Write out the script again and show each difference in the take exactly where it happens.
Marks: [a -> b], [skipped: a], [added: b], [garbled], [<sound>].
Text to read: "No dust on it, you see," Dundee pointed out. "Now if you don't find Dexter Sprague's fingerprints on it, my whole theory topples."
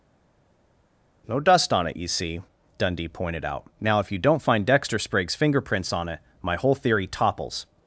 "No dust on it, you see," Dundee pointed out. "Now if you don't find Dexter Sprague's fingerprints on it, my whole theory topples."